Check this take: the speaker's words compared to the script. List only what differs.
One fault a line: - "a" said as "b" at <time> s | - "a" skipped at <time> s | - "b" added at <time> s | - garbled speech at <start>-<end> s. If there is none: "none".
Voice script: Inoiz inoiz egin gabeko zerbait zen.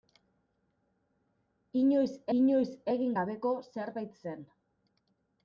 none